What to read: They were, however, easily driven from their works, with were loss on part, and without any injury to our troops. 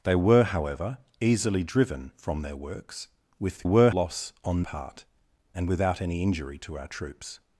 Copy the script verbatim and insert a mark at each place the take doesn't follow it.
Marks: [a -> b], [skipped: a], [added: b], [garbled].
They were, however, easily driven from their works, with were loss on part, and without any injury to our troops.